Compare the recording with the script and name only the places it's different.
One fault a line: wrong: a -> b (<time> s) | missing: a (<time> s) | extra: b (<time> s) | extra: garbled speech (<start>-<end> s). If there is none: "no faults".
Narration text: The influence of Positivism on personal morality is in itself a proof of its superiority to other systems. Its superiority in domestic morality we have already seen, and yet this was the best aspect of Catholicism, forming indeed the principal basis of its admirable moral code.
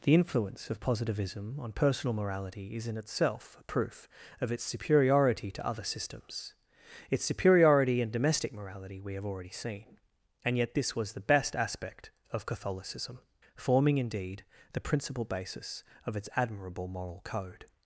no faults